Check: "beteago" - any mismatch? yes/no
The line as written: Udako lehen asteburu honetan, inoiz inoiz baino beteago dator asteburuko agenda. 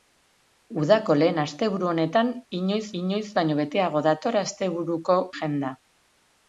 no